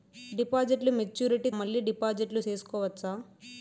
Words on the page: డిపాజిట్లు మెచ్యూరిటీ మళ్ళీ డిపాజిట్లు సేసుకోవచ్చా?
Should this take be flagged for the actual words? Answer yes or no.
no